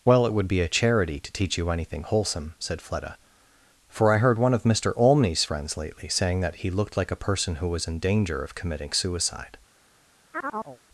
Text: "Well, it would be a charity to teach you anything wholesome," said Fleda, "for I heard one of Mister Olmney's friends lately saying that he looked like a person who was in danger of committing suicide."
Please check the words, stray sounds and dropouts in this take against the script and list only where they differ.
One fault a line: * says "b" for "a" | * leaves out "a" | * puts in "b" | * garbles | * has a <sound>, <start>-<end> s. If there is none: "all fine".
* has a chirp, 10.3-10.8 s